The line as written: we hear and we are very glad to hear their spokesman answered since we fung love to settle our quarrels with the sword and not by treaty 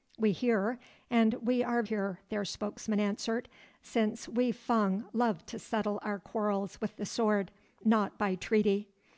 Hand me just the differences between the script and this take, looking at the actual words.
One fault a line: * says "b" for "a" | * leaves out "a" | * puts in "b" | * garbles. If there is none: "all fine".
* leaves out "very glad to"
* leaves out "and"